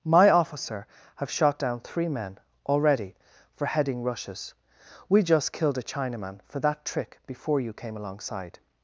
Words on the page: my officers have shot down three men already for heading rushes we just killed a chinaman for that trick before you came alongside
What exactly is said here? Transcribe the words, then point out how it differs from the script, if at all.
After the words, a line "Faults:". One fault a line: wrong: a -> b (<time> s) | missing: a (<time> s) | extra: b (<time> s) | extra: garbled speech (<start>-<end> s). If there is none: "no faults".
my officer have shot down three men already for heading rushes we just killed a chinaman for that trick before you came alongside
Faults:
wrong: officers -> officer (0.3 s)